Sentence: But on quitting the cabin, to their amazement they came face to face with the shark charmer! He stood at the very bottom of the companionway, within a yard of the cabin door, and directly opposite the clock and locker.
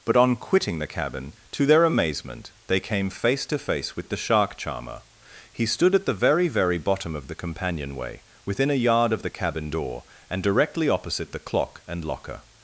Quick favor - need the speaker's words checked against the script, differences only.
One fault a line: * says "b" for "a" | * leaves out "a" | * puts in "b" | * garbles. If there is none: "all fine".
* puts in "very"